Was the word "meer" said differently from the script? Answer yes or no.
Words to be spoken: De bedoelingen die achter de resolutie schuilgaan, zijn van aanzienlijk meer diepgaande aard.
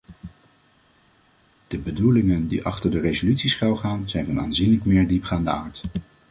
no